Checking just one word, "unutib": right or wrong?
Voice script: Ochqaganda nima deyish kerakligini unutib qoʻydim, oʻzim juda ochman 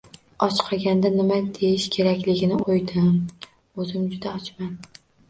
wrong